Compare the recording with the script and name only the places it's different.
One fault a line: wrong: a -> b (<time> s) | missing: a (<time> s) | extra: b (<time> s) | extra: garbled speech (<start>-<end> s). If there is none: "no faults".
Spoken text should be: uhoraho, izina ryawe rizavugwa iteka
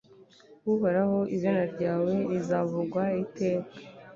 no faults